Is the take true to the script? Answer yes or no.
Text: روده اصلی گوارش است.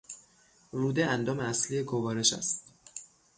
no